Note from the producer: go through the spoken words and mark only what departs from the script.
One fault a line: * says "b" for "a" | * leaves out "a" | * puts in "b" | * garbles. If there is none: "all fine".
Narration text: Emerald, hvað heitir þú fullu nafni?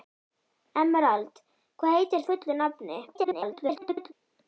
* leaves out "þú"
* garbles